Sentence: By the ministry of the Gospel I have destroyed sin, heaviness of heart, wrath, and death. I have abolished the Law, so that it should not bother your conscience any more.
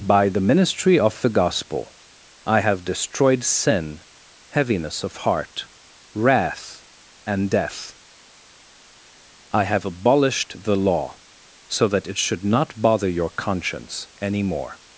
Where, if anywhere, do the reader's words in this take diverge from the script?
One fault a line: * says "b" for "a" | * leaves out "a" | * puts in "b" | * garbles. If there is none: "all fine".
all fine